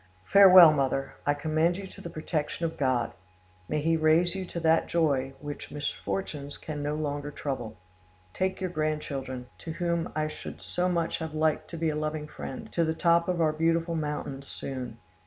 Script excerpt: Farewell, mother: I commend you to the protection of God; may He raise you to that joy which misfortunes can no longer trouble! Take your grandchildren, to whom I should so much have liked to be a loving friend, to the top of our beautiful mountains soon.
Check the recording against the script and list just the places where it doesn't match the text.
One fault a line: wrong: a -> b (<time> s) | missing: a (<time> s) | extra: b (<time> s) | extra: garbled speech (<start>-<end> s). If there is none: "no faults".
no faults